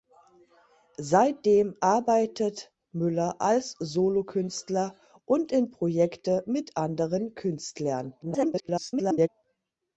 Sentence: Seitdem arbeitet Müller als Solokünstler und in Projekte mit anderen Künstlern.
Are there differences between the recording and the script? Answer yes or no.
yes